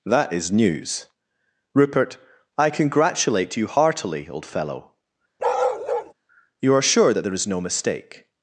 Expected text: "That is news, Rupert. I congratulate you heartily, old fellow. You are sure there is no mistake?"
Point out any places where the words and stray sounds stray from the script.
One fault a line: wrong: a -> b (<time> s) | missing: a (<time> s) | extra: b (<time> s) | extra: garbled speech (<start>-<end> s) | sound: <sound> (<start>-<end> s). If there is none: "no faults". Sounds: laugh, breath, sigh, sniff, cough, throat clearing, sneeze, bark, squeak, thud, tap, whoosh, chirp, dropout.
sound: bark (5.4-6.1 s)
extra: that (7.1 s)